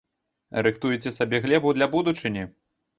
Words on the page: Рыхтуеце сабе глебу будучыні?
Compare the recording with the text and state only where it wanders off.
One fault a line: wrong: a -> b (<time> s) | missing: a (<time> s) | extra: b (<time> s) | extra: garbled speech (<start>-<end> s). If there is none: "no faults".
extra: для (1.8 s)